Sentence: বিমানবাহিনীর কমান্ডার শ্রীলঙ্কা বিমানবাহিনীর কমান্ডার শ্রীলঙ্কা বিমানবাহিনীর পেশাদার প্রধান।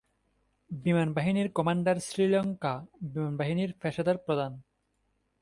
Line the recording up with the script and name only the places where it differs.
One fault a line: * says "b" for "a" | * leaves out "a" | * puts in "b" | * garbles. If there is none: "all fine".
* leaves out "কমান্ডার শ্রীলঙ্কা বিমানবাহিনীর"